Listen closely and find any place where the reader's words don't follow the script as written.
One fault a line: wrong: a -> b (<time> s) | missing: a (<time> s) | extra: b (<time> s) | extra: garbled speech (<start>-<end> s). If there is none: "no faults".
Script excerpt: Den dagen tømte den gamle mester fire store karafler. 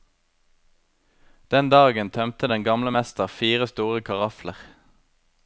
no faults